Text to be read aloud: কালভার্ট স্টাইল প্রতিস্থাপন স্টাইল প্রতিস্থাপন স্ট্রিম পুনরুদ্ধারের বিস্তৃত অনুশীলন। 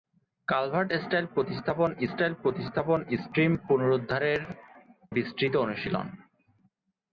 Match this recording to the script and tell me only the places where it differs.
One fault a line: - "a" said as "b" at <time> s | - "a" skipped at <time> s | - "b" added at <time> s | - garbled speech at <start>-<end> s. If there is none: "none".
none